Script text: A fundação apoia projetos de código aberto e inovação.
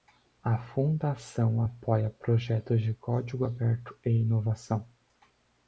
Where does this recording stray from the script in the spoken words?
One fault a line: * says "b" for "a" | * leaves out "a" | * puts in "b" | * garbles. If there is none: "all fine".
all fine